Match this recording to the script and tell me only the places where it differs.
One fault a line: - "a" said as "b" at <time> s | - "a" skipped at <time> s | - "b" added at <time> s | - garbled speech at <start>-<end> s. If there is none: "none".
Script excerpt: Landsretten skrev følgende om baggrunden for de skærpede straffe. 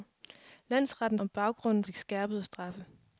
- "skrev følgende" skipped at 1.2 s
- "for" skipped at 1.8 s